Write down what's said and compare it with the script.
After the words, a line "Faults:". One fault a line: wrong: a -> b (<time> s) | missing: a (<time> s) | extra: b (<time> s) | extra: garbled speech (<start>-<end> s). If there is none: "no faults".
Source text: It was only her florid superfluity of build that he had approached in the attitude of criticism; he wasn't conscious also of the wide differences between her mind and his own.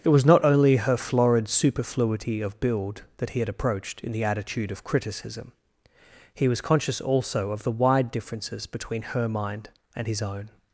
It was not only her florid superfluity of build that he had approached in the attitude of criticism; he was conscious also of the wide differences between her mind and his own.
Faults:
extra: not (0.2 s)
wrong: wasn't -> was (6.5 s)